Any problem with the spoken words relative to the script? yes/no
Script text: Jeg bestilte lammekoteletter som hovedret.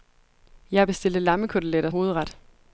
yes